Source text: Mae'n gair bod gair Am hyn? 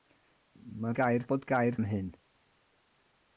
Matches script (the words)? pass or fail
pass